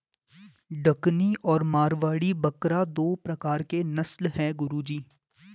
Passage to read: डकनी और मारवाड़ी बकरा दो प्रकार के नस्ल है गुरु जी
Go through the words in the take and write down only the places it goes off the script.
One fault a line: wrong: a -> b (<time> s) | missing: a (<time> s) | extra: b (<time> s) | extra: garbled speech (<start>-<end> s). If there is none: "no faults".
no faults